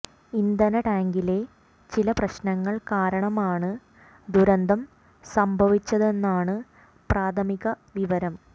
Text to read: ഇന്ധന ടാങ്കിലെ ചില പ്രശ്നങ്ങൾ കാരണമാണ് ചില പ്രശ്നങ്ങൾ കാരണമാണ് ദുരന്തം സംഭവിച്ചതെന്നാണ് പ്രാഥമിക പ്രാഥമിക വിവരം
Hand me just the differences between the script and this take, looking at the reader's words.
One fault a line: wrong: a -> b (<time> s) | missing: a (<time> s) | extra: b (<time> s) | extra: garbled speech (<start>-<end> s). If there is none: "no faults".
missing: ചില പ്രശ്നങ്ങൾ കാരണമാണ് (3.7 s)
missing: പ്രാഥമിക (7.6 s)